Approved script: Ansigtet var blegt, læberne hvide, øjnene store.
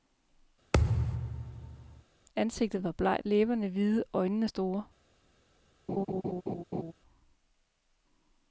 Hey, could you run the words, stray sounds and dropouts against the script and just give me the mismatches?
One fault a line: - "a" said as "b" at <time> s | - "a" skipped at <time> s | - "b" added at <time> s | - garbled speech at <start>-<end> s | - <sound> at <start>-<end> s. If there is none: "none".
- thud at 0.7-2.0 s
- laugh at 5.9-6.9 s